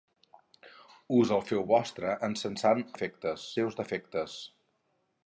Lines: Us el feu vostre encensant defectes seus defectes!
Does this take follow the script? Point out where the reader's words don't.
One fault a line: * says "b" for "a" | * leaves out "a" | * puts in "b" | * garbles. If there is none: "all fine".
all fine